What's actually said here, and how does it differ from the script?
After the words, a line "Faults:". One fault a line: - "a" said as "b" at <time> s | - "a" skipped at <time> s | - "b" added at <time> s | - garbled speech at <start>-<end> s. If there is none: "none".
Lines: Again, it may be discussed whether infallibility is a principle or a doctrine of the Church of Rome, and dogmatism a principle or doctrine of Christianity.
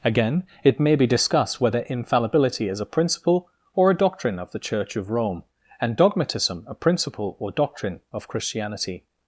Again, it may be discussed whether infallibility is a principle or a doctrine of the Church of Rome, and dogmatism a principle or doctrine of Christianity.
Faults:
none